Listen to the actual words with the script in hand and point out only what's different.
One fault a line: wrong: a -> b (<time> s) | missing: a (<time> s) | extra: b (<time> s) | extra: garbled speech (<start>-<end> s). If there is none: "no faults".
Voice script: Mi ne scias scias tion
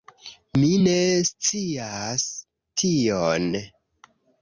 missing: scias (2.3 s)